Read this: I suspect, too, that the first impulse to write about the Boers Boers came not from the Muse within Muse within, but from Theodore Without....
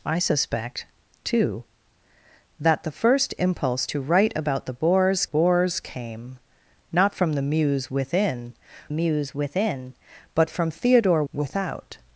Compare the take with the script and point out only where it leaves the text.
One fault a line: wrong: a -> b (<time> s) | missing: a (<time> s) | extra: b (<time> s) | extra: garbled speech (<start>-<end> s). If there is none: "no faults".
no faults